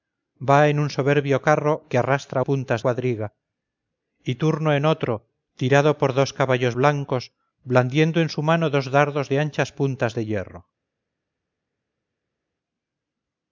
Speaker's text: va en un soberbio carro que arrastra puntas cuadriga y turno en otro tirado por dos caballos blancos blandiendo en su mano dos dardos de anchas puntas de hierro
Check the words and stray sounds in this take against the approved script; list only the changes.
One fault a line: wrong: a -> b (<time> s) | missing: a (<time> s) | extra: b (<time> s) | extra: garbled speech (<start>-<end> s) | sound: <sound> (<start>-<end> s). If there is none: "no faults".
no faults